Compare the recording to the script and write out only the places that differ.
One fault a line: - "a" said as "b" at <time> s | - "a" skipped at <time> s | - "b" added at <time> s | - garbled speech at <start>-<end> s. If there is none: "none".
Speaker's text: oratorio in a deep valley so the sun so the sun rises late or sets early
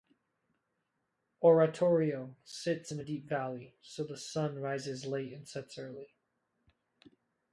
- "sits" added at 2.4 s
- "so the sun" skipped at 4.6 s
- "or" said as "and" at 5.3 s